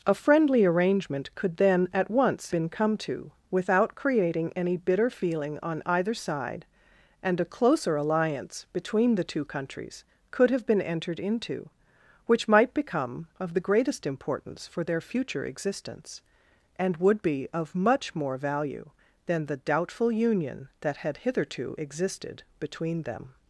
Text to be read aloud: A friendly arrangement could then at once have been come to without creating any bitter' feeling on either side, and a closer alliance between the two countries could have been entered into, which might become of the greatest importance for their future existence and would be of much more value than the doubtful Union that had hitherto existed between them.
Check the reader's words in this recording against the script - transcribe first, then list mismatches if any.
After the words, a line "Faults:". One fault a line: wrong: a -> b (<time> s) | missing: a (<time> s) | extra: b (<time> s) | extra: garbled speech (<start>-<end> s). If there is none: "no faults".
A friendly arrangement could then at once been come to without creating any bitter' feeling on either side, and a closer alliance between the two countries could have been entered into, which might become of the greatest importance for their future existence and would be of much more value than the doubtful Union that had hitherto existed between them.
Faults:
missing: have (2.5 s)